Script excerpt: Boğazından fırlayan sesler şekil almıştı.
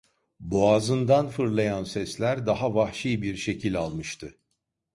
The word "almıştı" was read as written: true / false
true